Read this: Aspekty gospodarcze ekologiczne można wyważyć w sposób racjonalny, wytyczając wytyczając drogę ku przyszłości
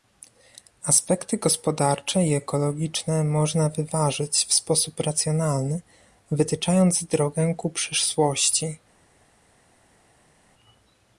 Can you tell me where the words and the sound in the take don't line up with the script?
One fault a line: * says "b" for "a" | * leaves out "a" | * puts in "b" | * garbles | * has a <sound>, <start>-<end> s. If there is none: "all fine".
* puts in "i"
* leaves out "wytyczając"